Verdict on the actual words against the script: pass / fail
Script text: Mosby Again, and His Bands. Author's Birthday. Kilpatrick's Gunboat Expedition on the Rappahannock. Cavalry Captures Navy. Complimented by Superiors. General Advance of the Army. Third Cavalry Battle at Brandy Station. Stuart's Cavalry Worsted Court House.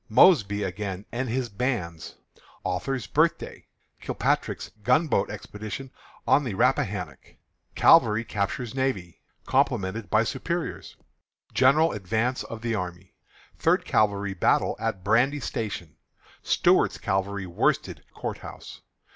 pass